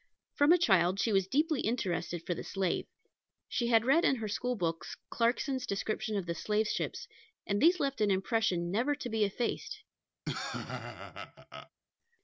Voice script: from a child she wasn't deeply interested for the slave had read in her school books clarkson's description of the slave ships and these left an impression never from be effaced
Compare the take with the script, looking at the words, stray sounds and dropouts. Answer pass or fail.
fail